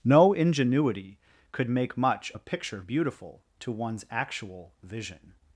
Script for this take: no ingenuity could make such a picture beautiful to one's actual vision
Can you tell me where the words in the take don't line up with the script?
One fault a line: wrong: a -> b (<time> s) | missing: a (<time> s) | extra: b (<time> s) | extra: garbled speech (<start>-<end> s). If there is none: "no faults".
wrong: such -> much (2.0 s)